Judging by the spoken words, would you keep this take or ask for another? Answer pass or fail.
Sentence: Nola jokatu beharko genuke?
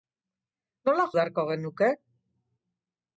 fail